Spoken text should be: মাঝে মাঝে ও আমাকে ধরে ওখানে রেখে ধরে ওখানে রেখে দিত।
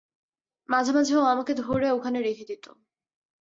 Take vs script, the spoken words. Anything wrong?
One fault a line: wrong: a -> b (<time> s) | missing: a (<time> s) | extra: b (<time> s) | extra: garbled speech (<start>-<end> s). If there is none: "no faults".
missing: ধরে ওখানে রেখে (2.5 s)